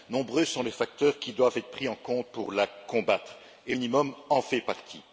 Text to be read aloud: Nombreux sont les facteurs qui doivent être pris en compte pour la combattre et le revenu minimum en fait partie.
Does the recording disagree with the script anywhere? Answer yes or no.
yes